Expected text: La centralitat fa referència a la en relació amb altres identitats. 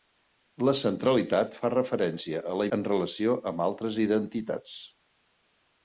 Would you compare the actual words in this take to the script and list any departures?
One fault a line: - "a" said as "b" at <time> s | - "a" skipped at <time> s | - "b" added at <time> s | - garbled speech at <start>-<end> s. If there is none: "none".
none